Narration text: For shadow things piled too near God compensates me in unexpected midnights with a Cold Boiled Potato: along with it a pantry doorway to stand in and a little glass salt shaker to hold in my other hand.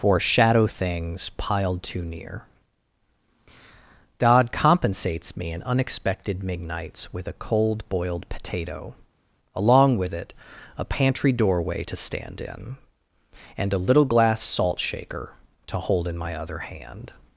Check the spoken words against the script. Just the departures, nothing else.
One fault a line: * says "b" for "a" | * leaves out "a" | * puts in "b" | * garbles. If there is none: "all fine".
all fine